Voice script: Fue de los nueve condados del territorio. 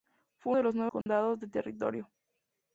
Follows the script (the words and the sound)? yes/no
no